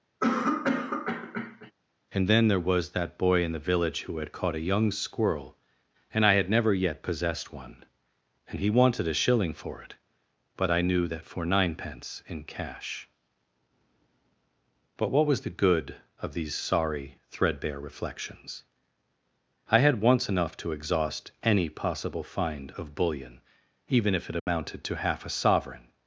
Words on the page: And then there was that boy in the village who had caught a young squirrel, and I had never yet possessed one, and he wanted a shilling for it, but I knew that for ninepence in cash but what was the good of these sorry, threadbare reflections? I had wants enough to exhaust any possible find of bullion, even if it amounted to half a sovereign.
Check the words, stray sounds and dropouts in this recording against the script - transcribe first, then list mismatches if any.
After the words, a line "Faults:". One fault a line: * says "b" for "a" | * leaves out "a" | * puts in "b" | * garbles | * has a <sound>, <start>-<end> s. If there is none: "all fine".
And then there was that boy in the village who had caught a young squirrel, and I had never yet possessed one, and he wanted a shilling for it, but I knew that for ninepence in cash but what was the good of these sorry, threadbare reflections? I had once enough to exhaust any possible find of bullion, even if it amounted to half a sovereign.
Faults:
* has a cough, 0.2-1.7 s
* says "once" for "wants"
* has a dropout, 24.4-24.5 s